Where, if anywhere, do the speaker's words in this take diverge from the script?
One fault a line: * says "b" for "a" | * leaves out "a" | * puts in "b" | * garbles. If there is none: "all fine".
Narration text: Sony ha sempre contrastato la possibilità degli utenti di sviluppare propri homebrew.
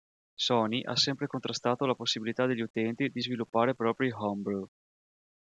all fine